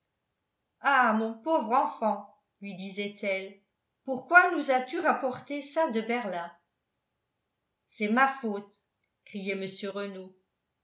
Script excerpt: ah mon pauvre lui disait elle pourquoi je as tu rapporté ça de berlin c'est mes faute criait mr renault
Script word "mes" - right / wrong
wrong